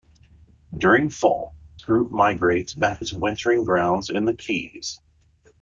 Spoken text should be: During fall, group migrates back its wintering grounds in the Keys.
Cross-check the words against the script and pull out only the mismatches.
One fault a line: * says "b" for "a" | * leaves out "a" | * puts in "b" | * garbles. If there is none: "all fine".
all fine